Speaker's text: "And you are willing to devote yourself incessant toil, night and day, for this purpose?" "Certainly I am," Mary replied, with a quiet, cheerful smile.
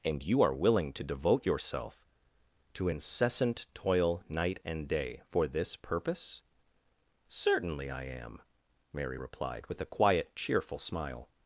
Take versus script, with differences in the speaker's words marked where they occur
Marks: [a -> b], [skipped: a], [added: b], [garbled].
"And you are willing to devote yourself [added: to] incessant toil, night and day, for this purpose?" "Certainly I am," Mary replied, with a quiet, cheerful smile.